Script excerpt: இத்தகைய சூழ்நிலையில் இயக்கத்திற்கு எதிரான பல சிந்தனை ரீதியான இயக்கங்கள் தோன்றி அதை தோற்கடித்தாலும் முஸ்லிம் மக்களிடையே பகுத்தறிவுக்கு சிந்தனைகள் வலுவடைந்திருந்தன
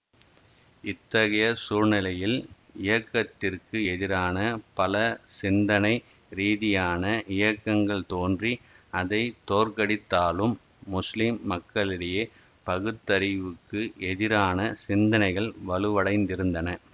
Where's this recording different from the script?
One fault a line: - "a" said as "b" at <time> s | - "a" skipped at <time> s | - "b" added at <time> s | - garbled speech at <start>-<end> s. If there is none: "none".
- "எதிரான" added at 14.1 s